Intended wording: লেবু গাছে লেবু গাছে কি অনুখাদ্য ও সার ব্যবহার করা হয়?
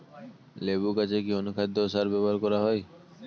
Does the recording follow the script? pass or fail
fail